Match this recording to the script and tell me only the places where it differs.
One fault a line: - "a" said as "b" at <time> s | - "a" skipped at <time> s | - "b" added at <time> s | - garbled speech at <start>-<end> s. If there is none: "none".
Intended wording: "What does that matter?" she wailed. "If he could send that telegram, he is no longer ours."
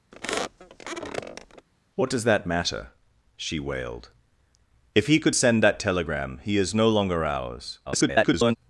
- garbled speech at 7.9-8.6 s